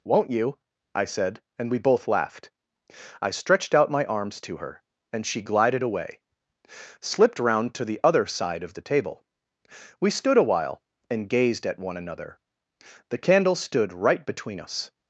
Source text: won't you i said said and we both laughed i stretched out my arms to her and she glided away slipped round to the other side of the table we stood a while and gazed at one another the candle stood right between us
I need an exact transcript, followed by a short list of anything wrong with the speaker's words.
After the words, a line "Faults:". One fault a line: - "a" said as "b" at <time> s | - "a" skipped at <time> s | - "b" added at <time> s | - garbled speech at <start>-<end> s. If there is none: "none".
won't you i said and we both laughed i stretched out my arms to her and she glided away slipped round to the other side of the table we stood a while and gazed at one another the candle stood right between us
Faults:
- "said" skipped at 1.4 s